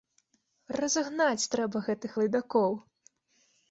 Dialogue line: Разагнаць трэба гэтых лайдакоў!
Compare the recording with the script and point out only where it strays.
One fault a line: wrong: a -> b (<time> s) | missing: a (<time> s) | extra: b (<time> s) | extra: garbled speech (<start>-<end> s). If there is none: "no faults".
no faults